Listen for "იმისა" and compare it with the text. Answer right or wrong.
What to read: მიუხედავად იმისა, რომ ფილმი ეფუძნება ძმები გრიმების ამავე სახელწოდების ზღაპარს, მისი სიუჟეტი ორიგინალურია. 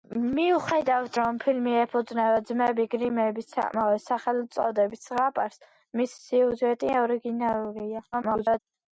wrong